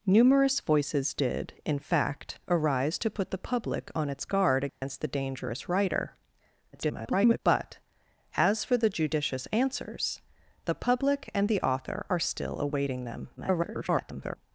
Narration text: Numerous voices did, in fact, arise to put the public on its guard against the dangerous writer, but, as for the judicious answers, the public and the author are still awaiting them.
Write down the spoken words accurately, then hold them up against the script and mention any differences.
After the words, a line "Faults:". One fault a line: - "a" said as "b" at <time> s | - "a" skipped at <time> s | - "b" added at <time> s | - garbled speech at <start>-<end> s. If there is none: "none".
Numerous voices did, in fact, arise to put the public on its guard against the dangerous writer, [garbled] but, as for the judicious answers, the public and the author are still awaiting them. [garbled]
Faults:
- garbled speech at 6.7-7.4 s
- garbled speech at 13.4-14.4 s